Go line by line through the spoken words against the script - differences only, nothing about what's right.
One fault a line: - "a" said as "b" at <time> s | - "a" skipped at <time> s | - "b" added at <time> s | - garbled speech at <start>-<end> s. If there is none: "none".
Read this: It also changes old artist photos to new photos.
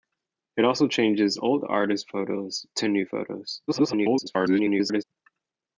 - garbled speech at 3.7-5.0 s